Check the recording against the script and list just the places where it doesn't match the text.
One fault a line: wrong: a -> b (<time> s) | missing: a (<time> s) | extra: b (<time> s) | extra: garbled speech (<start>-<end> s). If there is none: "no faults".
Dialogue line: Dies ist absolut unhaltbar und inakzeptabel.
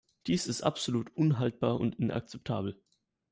no faults